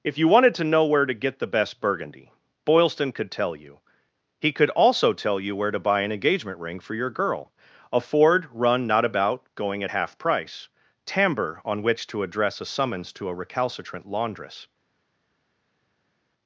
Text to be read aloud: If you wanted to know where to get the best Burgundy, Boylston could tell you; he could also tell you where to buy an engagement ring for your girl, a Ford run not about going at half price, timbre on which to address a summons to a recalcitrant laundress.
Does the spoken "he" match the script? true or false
true